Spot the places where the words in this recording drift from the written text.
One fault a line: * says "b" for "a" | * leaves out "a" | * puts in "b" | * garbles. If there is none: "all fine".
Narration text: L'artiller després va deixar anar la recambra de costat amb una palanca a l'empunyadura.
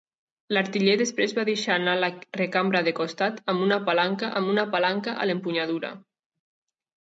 * puts in "amb una palanca"